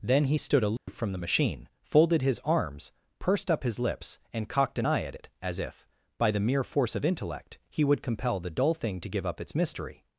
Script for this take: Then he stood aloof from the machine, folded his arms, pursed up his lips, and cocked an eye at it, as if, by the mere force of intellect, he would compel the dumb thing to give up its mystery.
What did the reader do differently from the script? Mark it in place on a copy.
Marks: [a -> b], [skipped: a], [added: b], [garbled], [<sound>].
Then he stood aloof [dropout] from the machine, folded his arms, pursed up his lips, and cocked an eye at it, as if, by the mere force of intellect, he would compel the [dumb -> dull] thing to give up its mystery.